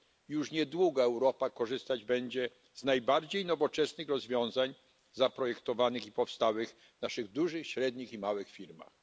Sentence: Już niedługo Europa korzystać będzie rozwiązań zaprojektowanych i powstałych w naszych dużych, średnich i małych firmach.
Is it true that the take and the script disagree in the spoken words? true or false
true